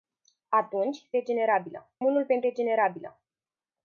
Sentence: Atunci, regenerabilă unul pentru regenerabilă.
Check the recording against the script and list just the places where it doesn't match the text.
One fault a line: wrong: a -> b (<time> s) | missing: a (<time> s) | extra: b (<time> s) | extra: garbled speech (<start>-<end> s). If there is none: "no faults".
no faults